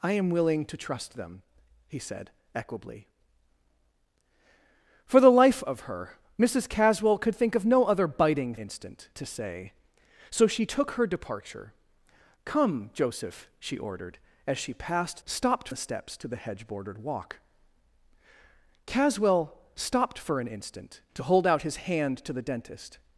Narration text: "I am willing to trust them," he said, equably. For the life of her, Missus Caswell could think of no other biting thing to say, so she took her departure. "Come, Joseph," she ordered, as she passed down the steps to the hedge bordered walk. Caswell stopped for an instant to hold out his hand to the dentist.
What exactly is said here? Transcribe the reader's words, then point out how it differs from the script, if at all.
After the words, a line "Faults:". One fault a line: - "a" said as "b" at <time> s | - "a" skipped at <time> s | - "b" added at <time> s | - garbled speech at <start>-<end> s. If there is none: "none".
"I am willing to trust them," he said, equably. For the life of her, Missus Caswell could think of no other biting instant to say, so she took her departure. "Come, Joseph," she ordered, as she passed stopped the steps to the hedge bordered walk. Caswell stopped for an instant to hold out his hand to the dentist.
Faults:
- "thing" said as "instant" at 8.5 s
- "down" said as "stopped" at 15.2 s